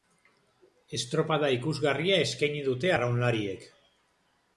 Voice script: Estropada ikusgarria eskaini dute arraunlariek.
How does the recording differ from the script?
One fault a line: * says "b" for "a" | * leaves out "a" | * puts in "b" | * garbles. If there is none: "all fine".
all fine